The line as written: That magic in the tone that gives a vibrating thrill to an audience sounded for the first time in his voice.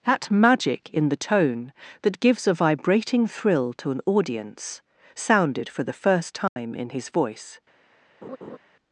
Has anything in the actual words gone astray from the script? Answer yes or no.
no